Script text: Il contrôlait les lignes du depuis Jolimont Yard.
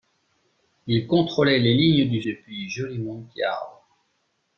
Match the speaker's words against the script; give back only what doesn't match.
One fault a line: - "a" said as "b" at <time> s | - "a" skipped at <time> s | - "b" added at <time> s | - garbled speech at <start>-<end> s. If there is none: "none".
none